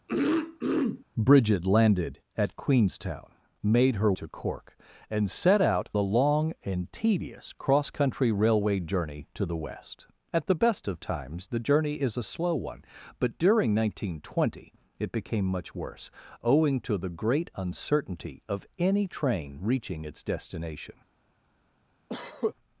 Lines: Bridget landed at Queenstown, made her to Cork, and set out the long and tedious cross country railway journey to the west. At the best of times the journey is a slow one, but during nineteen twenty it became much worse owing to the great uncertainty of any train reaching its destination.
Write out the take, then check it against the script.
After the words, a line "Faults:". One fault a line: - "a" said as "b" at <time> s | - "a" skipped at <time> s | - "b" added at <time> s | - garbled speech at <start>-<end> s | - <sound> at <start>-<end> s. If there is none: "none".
Bridget landed at Queenstown, made her to Cork, and set out the long and tedious cross country railway journey to the west. At the best of times the journey is a slow one, but during nineteen twenty it became much worse owing to the great uncertainty of any train reaching its destination.
Faults:
- throat clearing at 0.1-1.1 s
- cough at 22.1-22.5 s